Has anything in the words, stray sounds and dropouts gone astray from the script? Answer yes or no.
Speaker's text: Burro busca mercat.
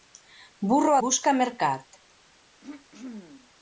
yes